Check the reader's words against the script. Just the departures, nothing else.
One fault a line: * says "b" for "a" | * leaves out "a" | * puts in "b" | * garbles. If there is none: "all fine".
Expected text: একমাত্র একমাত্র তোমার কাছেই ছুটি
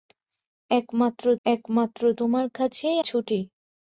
all fine